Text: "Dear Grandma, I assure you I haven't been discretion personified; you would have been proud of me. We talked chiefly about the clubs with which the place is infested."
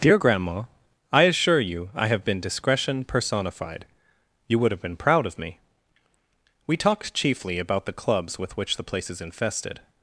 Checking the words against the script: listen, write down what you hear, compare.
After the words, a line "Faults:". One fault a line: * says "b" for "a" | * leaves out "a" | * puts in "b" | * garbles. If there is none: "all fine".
"Dear Grandma, I assure you I have been discretion personified; you would have been proud of me. We talked chiefly about the clubs with which the place is infested."
Faults:
* says "have" for "haven't"